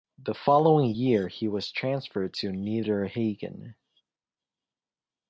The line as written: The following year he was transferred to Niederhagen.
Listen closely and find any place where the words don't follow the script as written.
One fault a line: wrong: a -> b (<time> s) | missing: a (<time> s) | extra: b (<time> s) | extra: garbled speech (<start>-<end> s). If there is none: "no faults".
no faults